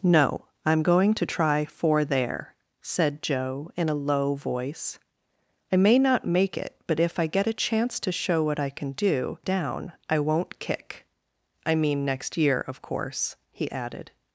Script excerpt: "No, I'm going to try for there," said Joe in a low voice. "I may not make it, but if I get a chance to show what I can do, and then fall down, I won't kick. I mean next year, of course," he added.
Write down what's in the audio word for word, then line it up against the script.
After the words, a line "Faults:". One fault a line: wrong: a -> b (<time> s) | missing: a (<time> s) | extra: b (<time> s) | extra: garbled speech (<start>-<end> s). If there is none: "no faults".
"No, I'm going to try for there," said Joe in a low voice. "I may not make it, but if I get a chance to show what I can do, down, I won't kick. I mean next year, of course," he added.
Faults:
missing: and then fall (9.4 s)